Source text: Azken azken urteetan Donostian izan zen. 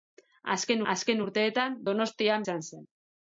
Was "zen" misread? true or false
false